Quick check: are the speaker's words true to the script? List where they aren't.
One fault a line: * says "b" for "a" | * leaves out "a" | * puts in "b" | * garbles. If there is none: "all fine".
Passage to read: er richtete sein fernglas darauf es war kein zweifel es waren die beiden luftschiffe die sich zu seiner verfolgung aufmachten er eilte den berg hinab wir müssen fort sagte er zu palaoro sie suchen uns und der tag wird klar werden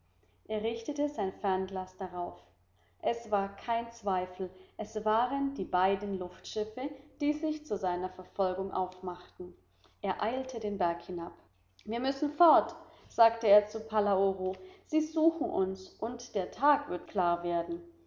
all fine